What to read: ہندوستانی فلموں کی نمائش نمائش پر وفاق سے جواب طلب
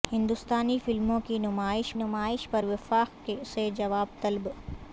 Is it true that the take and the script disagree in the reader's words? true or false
false